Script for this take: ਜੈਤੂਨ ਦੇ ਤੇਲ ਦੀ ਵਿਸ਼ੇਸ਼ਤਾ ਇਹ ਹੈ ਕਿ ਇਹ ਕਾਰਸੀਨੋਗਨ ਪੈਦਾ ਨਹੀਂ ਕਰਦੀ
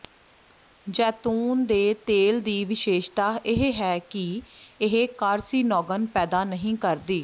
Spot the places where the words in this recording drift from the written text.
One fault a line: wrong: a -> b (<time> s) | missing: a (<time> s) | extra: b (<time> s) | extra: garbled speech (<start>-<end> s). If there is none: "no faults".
no faults